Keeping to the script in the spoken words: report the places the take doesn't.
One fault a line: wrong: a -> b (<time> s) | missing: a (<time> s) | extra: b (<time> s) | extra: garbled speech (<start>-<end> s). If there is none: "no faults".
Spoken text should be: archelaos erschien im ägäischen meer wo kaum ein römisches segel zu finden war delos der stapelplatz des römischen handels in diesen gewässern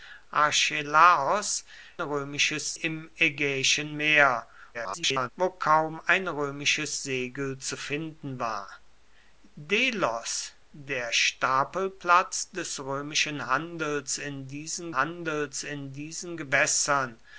wrong: erschien -> römisches (2.0 s)
extra: garbled speech (4.7-5.3 s)
extra: handels in diesen (14.9 s)